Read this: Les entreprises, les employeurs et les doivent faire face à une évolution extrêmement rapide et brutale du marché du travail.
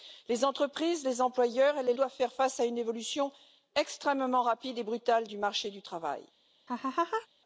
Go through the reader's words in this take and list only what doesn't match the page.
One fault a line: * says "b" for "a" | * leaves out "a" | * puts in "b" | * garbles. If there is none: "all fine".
all fine